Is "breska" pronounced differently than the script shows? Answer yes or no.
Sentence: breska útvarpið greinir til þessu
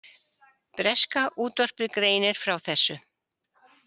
no